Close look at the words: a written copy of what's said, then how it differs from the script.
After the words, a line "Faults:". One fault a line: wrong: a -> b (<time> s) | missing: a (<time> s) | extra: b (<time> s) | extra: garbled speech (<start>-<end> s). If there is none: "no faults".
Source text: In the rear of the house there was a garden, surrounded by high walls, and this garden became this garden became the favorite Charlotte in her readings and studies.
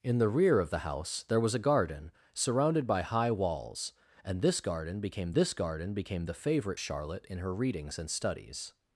In the rear of the house there was a garden, surrounded by high walls, and this garden became this garden became the favorite Charlotte in her readings and studies.
Faults:
no faults